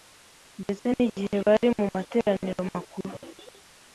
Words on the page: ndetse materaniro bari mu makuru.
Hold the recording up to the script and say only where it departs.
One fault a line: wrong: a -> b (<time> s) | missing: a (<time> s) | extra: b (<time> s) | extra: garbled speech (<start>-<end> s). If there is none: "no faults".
wrong: materaniro -> n'igihe (0.9 s)
extra: materaniro (1.9 s)